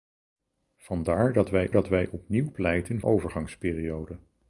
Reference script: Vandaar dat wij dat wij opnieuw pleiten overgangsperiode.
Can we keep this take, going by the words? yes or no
yes